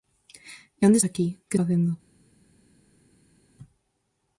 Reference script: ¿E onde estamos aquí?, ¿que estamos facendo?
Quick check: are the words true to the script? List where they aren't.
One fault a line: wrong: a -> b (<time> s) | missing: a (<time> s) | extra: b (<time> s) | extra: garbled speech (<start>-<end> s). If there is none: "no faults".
missing: estamos (1.0 s)
missing: estamos (1.6 s)